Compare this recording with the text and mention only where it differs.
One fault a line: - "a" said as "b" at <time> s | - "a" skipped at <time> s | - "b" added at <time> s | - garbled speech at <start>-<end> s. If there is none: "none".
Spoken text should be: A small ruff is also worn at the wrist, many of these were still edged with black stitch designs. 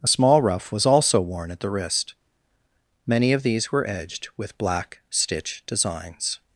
- "is" said as "was" at 0.7 s
- "still" skipped at 3.9 s